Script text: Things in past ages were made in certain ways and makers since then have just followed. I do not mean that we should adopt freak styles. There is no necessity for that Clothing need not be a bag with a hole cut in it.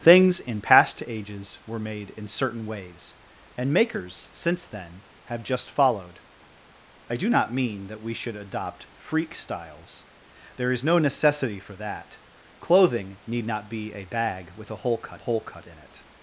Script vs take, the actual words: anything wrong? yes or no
yes